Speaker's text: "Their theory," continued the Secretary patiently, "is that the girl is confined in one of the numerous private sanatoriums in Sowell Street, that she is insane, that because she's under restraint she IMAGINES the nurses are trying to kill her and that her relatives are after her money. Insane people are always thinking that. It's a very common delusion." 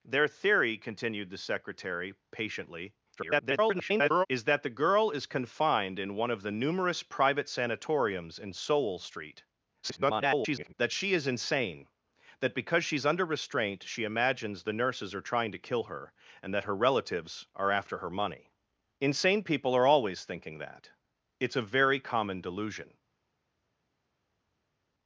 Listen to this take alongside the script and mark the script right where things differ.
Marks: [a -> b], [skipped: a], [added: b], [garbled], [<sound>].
"Their theory," continued the Secretary patiently, [garbled] "is that the girl is confined in one of the numerous private sanatoriums in Sowell Street, [garbled] that she is insane, that because she's under restraint she IMAGINES the nurses are trying to kill her and that her relatives are after her money. Insane people are always thinking that. It's a very common delusion."